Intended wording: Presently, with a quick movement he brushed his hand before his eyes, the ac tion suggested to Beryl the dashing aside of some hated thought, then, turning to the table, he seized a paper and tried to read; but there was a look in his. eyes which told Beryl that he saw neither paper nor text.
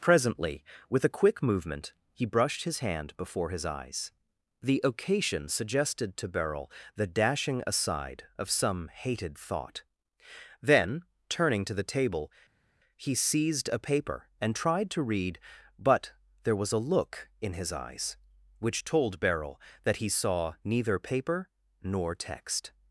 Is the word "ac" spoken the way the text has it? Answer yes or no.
no